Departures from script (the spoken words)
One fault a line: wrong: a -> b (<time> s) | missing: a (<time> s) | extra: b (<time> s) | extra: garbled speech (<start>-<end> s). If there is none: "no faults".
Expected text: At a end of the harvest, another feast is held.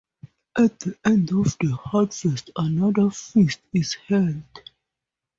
wrong: a -> the (0.8 s)